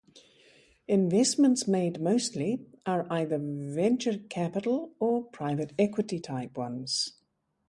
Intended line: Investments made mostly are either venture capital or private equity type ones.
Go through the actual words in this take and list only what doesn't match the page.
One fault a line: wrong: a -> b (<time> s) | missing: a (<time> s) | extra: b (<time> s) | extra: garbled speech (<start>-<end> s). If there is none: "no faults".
no faults